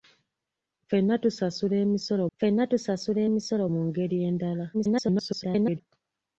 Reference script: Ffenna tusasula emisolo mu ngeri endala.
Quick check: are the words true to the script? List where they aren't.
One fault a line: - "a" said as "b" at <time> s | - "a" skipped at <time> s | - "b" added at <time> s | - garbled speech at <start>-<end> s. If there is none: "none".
- "ffenna tusasula emisolo" added at 2.3 s
- garbled speech at 4.7-5.8 s